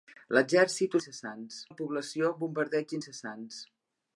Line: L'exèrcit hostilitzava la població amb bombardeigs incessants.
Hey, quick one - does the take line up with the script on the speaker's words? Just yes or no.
no